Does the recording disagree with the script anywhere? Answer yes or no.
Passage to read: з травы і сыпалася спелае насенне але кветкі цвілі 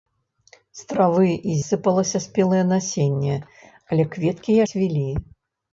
no